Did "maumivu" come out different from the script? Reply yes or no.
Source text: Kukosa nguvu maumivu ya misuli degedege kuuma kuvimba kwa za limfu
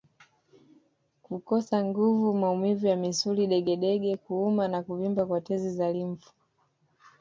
no